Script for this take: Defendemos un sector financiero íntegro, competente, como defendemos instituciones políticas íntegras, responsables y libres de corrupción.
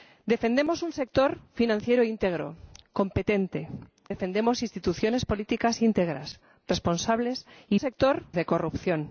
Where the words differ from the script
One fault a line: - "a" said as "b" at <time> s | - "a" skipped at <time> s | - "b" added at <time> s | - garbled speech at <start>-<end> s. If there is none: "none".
- "como" skipped at 3.7 s
- "libres" said as "sector" at 7.8 s